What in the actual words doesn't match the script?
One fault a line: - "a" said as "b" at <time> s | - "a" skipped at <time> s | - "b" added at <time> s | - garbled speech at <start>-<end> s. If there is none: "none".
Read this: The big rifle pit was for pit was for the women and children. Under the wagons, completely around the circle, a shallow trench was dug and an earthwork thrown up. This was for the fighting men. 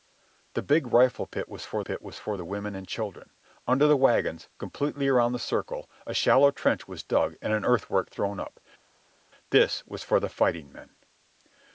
none